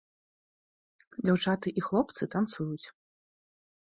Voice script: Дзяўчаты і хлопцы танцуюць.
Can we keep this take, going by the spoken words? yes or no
yes